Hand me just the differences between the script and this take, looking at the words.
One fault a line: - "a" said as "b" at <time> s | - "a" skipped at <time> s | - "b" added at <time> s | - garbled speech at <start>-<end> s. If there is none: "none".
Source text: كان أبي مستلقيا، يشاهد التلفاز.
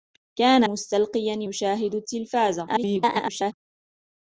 - "أبي" skipped at 0.6 s
- garbled speech at 2.7-3.5 s